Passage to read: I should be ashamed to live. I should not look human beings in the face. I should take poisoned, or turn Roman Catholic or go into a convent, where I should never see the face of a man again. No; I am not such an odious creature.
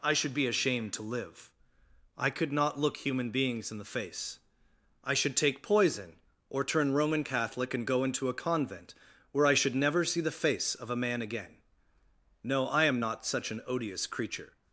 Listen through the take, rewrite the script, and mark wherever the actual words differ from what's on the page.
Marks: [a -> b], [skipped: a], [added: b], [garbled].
I should be ashamed to live. I [should -> could] not look human beings in the face. I should take [poisoned, -> poison] or turn Roman Catholic [or -> and] go into a convent, where I should never see the face of a man again. No; I am not such an odious creature.